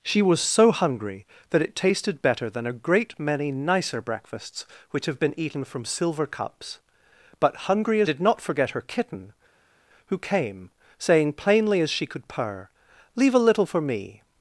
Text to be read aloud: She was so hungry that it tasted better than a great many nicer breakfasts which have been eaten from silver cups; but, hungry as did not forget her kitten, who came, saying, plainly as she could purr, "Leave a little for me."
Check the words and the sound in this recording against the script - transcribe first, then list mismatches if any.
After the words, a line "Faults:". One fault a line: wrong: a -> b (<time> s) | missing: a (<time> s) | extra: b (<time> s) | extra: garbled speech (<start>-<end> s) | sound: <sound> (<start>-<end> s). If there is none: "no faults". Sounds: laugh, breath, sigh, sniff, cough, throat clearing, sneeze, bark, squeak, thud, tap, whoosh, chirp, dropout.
She was so hungry that it tasted better than a great many nicer breakfasts which have been eaten from silver cups; but, hungry as did not forget her kitten, who came, saying, plainly as she could purr, "Leave a little for me."
Faults:
no faults